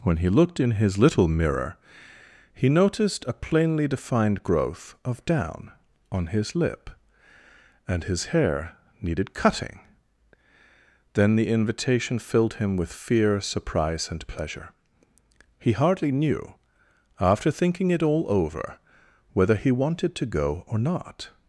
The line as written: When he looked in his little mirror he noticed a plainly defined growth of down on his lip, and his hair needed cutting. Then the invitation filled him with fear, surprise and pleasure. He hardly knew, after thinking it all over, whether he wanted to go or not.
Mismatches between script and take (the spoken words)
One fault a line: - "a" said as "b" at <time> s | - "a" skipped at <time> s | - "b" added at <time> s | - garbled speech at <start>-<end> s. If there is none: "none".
none